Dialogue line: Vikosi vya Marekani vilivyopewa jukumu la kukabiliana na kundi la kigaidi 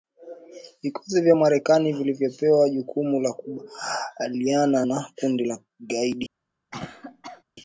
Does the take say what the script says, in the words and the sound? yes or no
no